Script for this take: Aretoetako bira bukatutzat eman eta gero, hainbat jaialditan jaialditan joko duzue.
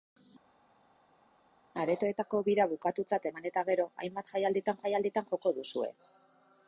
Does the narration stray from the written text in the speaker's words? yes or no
no